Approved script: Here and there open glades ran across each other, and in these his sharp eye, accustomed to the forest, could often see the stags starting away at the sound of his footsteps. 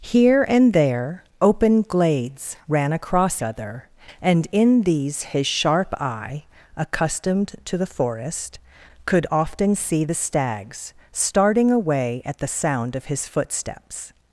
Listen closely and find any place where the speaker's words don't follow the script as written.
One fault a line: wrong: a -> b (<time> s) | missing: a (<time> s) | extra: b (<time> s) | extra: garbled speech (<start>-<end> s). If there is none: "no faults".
missing: each (3.4 s)